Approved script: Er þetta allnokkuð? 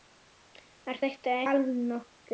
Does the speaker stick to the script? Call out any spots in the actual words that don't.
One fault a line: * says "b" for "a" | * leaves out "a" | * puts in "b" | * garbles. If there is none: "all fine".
all fine